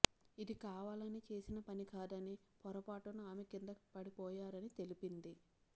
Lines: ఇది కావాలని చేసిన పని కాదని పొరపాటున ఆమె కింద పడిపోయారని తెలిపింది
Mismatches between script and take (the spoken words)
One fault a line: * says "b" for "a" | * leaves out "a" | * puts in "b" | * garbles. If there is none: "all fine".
all fine